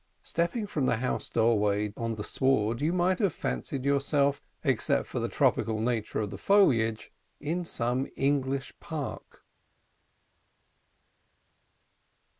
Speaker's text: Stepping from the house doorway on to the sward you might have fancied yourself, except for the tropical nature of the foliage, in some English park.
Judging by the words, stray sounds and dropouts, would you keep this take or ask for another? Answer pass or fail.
fail